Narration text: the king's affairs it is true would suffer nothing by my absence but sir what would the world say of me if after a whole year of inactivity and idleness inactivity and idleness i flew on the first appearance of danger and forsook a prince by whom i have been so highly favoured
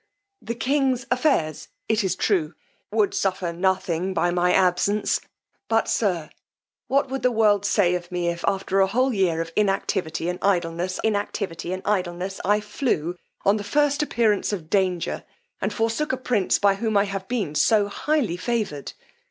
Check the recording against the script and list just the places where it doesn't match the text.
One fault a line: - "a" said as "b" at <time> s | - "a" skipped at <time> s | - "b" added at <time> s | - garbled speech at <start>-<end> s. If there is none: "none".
none